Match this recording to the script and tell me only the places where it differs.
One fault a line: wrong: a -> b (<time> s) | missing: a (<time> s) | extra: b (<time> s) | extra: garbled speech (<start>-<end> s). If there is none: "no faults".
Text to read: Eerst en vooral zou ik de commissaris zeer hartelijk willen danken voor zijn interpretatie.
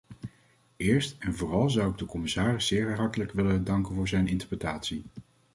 no faults